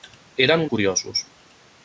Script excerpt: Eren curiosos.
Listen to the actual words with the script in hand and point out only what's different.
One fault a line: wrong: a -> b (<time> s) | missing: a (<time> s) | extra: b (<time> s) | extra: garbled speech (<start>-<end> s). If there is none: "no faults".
no faults